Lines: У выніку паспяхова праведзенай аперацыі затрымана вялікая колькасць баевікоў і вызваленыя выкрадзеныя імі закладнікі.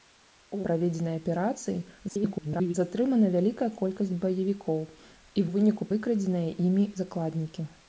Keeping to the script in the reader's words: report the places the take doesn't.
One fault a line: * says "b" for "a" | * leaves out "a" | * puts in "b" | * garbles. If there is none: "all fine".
* leaves out "выніку паспяхова"
* garbles
* says "выніку" for "вызваленыя"